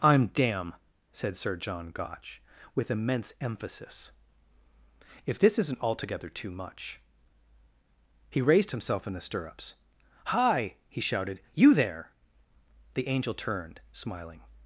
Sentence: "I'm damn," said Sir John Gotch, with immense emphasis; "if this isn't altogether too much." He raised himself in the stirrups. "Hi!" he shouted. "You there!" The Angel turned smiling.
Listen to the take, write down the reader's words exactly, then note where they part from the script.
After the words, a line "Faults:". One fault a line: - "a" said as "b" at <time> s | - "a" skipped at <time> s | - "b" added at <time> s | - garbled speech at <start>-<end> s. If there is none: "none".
"I'm damn," said Sir John Gotch, with immense emphasis; "if this isn't altogether too much." He raised himself in the stirrups. "Hi!" he shouted. "You there!" The Angel turned smiling.
Faults:
none